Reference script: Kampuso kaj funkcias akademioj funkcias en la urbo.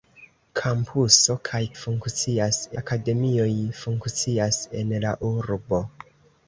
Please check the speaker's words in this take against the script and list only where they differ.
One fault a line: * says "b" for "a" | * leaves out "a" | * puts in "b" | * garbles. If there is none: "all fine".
all fine